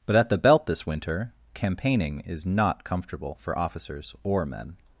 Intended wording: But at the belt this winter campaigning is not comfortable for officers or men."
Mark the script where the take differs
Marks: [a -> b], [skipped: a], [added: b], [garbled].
But at the belt this winter campaigning is not comfortable for officers or men."